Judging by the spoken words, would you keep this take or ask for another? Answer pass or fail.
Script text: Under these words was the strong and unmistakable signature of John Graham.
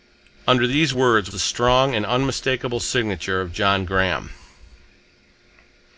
fail